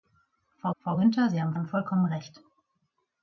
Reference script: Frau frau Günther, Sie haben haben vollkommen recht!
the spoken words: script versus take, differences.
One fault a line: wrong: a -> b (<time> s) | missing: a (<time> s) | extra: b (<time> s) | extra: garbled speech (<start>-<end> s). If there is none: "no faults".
no faults